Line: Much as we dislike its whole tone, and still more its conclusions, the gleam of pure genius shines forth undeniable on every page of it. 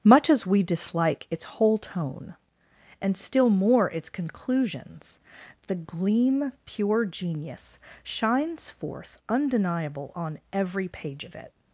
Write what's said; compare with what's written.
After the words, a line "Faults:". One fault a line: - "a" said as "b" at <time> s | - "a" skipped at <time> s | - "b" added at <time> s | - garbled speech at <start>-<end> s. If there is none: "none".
Much as we dislike its whole tone, and still more its conclusions, the gleam pure genius shines forth undeniable on every page of it.
Faults:
- "of" skipped at 6.5 s